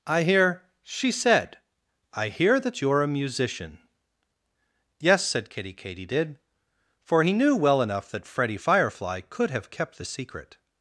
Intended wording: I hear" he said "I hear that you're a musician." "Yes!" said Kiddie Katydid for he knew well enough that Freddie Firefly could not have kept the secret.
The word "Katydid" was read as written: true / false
true